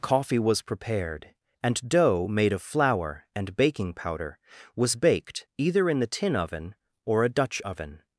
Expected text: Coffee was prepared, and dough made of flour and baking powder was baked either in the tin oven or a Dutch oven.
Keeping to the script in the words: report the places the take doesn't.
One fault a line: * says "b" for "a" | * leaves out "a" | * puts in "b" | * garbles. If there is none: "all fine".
all fine